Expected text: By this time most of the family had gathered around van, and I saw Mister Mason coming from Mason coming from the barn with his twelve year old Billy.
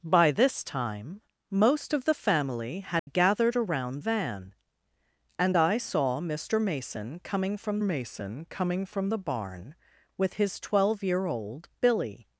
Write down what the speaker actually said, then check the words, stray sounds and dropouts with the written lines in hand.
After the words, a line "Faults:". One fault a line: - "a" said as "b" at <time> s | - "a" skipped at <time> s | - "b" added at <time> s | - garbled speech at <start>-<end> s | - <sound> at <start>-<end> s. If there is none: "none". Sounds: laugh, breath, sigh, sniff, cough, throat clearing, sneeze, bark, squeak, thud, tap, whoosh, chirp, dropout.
By this time most of the family had gathered around van, and I saw Mister Mason coming from Mason coming from the barn with his twelve year old Billy.
Faults:
- dropout at 3.0-3.1 s